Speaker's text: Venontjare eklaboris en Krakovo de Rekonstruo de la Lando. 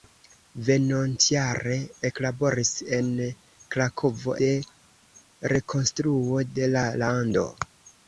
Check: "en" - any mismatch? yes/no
no